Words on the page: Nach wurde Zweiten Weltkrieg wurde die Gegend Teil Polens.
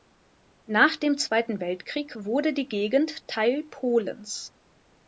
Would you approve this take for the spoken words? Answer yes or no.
no